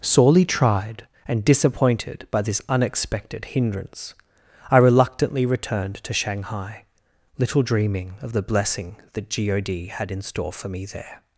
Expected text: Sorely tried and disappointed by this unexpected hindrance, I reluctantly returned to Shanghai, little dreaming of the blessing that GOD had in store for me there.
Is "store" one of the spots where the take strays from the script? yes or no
no